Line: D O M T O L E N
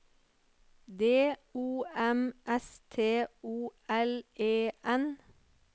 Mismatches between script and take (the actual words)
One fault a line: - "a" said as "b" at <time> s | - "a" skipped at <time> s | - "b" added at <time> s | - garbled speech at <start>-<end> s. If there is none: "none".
- "S" added at 2.5 s